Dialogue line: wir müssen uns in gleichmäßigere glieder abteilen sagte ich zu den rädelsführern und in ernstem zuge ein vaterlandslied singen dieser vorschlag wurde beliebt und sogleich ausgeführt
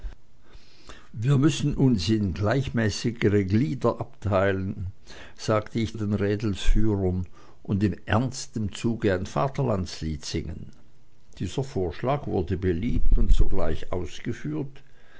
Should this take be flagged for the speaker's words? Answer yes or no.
yes